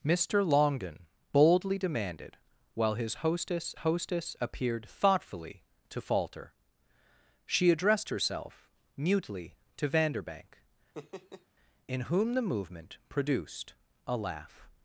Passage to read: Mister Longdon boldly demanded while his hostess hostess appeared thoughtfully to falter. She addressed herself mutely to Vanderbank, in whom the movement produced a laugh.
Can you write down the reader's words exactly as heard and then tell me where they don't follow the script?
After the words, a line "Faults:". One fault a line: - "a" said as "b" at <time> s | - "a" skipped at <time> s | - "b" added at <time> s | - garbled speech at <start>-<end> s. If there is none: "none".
Mister Longdon boldly demanded while his hostess hostess appeared thoughtfully to falter. She addressed herself mutely to Vanderbank, in whom the movement produced a laugh.
Faults:
none